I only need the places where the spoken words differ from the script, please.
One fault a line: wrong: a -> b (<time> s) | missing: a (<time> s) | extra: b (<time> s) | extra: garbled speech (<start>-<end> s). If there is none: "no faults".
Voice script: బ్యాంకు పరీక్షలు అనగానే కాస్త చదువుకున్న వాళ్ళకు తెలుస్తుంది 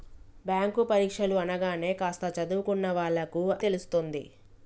no faults